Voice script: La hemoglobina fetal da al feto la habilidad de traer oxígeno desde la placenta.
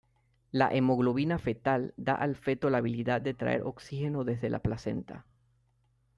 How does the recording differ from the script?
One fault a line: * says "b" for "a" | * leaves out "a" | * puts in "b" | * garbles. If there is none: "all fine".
all fine